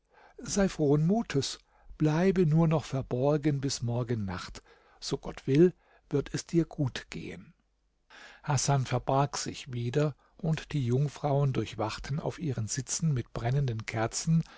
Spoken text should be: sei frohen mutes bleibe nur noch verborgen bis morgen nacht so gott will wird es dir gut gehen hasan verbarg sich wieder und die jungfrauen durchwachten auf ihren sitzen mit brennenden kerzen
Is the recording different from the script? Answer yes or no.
no